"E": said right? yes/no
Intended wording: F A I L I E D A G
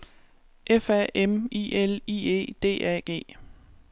yes